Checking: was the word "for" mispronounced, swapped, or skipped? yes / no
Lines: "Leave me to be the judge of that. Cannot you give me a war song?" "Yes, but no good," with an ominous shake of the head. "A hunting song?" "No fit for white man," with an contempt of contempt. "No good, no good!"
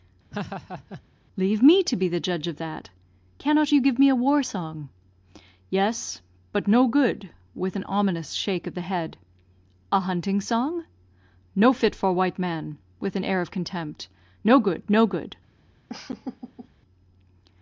no